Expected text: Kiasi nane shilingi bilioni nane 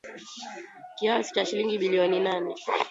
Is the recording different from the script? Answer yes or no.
yes